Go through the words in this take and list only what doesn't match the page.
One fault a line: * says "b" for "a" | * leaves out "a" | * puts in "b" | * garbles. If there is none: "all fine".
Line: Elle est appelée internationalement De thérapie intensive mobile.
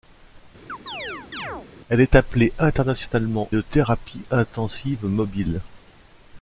all fine